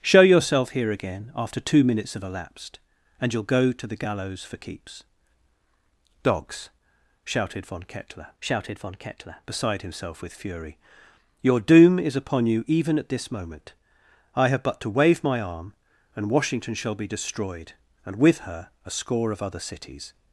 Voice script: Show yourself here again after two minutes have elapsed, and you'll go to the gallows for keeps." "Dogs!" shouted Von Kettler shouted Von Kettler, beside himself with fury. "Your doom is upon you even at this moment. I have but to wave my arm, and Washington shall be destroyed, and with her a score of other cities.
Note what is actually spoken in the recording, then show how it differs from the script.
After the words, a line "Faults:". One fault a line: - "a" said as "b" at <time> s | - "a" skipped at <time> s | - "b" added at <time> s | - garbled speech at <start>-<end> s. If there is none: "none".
Show yourself here again after two minutes have elapsed, and you'll go to the gallows for keeps." "Dogs!" shouted Von Kettler shouted Von Kettler, beside himself with fury. "Your doom is upon you even at this moment. I have but to wave my arm, and Washington shall be destroyed, and with her a score of other cities.
Faults:
none